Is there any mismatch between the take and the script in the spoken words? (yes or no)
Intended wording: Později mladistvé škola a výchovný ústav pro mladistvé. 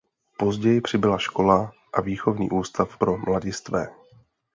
yes